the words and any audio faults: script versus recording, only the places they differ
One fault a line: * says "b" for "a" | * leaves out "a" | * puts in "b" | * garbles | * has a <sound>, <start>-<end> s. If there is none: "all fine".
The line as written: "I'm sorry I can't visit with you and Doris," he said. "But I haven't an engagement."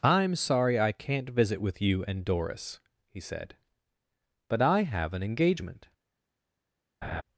* says "have" for "haven't"
* has a laugh, 7.0-7.2 s